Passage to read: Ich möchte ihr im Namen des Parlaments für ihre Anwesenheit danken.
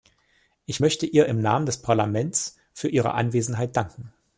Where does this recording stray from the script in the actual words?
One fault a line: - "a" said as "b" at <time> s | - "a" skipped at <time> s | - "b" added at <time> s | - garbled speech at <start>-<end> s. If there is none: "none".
none